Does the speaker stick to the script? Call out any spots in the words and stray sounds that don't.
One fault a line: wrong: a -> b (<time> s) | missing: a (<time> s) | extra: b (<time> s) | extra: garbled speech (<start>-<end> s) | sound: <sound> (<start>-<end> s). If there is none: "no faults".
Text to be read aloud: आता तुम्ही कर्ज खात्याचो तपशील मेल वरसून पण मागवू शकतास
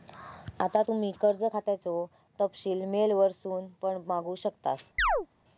sound: chirp (5.0-5.3 s)